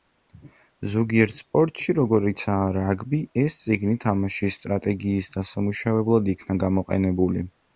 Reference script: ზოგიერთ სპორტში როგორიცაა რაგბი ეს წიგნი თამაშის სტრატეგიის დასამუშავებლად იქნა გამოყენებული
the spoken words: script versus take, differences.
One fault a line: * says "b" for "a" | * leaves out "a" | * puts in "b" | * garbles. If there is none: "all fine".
all fine